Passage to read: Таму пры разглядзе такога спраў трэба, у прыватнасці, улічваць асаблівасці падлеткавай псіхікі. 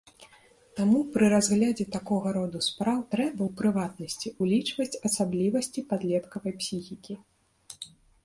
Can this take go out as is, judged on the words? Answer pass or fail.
fail